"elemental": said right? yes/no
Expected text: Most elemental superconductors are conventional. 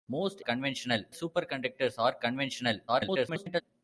no